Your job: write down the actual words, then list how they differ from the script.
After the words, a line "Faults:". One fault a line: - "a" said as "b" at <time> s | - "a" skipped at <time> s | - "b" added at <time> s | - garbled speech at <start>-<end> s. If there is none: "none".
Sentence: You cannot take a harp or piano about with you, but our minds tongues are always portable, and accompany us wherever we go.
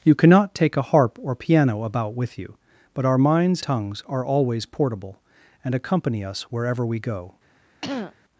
You cannot take a harp or piano about with you, but our minds tongues are always portable, and accompany us wherever we go.
Faults:
none